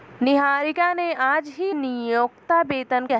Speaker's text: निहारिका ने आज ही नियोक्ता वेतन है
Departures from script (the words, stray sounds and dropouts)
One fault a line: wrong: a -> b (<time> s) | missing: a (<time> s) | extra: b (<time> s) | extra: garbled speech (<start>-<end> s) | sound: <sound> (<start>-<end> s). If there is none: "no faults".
no faults